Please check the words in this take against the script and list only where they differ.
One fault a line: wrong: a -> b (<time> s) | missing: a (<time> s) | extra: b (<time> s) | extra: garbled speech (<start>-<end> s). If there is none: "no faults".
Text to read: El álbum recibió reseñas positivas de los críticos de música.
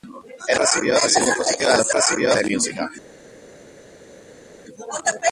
missing: álbum (0.6 s)
wrong: críticos -> recibió (1.9 s)